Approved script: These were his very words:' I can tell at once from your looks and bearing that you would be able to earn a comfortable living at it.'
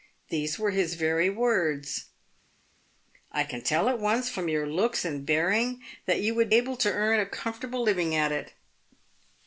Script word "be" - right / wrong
wrong